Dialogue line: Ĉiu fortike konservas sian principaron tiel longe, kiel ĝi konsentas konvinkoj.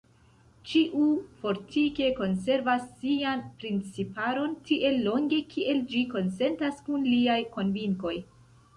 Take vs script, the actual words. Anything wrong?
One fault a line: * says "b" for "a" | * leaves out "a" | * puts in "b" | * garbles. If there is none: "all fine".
* puts in "kun liaj"